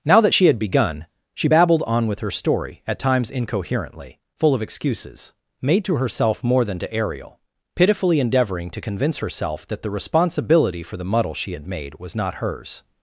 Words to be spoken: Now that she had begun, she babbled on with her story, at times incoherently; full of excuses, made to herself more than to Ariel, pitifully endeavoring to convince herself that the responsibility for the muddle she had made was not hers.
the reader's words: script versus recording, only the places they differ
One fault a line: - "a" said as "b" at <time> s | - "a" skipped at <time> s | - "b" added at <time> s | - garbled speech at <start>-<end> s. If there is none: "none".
none